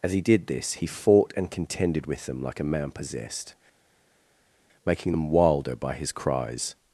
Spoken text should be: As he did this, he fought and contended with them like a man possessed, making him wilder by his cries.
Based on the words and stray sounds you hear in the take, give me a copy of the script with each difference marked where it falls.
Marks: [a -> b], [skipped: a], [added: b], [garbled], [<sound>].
As he did this, he fought and contended with them like a man possessed, making [him -> them] wilder by his cries.